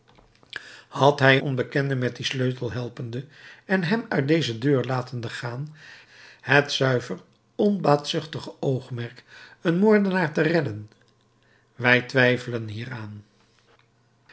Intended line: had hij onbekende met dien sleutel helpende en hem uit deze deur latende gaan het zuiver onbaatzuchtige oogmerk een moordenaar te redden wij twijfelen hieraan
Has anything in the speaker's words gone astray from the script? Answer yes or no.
no